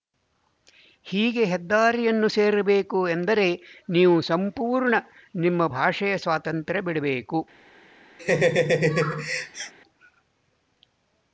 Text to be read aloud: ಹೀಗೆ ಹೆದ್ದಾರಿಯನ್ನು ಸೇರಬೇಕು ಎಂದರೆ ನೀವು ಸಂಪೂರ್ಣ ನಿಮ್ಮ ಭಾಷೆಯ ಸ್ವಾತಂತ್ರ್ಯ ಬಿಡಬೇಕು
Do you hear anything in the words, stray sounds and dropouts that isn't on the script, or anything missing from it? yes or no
yes